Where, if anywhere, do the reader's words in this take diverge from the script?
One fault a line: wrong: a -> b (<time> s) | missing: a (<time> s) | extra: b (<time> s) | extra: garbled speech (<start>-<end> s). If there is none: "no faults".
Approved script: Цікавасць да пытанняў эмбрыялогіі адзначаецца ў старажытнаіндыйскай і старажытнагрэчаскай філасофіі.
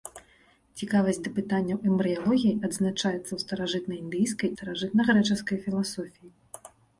missing: і (4.5 s)